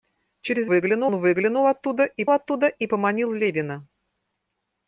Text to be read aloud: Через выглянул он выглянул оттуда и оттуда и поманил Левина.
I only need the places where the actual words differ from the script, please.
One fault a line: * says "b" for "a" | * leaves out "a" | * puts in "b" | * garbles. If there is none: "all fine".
all fine